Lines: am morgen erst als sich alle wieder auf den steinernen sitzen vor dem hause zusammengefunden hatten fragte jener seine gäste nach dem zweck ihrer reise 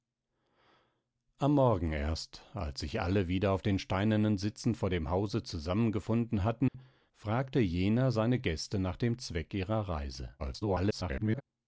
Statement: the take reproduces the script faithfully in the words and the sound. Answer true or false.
false